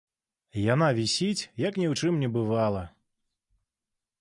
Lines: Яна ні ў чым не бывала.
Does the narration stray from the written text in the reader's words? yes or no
yes